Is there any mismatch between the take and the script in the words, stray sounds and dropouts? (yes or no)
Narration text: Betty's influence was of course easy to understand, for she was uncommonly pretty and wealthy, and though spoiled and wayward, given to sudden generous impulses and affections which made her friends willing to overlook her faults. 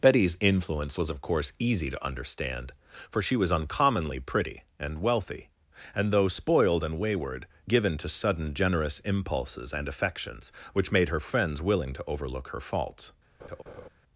yes